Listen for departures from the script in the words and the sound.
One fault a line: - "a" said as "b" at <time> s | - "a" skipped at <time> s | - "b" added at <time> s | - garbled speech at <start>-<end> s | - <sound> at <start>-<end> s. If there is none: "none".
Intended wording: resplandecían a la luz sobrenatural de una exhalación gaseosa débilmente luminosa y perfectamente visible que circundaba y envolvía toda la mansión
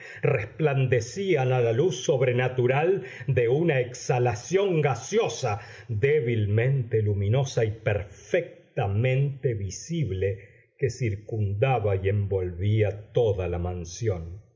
none